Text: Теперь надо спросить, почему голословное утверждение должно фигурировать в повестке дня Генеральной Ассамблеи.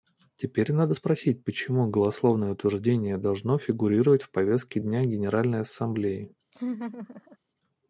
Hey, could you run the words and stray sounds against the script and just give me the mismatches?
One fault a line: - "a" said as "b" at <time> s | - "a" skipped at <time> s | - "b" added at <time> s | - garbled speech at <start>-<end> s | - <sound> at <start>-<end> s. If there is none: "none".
- laugh at 6.5-7.4 s